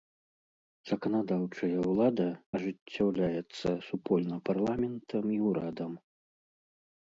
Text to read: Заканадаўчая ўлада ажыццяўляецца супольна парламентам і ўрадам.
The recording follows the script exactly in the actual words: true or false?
true